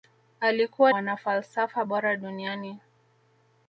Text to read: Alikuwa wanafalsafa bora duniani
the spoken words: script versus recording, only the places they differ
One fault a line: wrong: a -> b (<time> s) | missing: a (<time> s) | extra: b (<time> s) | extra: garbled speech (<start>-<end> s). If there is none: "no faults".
no faults